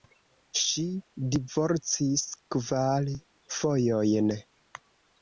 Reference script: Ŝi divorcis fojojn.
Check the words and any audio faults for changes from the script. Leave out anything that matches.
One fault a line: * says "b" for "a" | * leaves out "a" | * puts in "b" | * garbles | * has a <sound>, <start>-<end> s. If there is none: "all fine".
* puts in "kvar"